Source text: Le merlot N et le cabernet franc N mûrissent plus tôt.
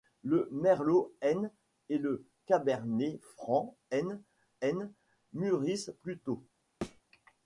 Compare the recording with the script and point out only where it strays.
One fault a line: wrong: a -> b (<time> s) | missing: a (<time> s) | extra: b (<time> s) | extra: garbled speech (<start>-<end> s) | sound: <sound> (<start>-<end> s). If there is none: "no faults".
extra: N (4.6 s)
sound: thud (6.8-7.0 s)